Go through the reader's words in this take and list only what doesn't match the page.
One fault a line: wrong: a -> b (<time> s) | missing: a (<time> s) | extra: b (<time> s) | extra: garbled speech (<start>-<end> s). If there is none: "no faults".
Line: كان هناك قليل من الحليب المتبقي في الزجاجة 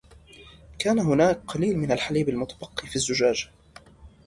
no faults